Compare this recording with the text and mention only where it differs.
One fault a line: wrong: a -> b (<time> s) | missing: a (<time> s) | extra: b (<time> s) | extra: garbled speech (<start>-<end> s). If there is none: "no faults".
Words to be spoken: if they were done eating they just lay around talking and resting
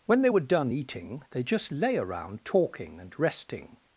wrong: if -> when (0.1 s)